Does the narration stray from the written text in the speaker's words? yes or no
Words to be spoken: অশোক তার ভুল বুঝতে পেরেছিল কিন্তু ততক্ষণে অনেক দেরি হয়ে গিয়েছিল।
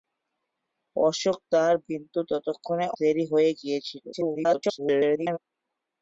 yes